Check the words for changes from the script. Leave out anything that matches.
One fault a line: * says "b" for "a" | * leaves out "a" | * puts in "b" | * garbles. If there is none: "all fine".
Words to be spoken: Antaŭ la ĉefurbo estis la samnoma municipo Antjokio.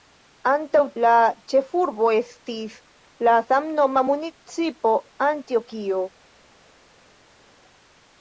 all fine